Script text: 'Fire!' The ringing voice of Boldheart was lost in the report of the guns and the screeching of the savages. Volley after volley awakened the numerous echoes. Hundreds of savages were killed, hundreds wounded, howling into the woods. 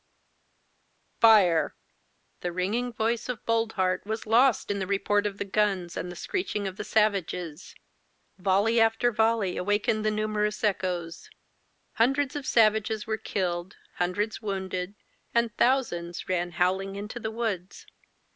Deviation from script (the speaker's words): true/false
true